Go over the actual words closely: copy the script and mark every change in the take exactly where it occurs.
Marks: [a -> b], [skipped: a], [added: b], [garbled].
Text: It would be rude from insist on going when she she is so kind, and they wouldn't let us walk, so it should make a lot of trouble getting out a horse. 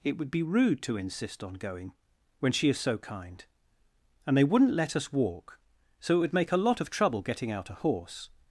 It would be rude [from -> to] insist on going when she [skipped: she] is so kind, and they wouldn't let us walk, so it [should -> would] make a lot of trouble getting out a horse.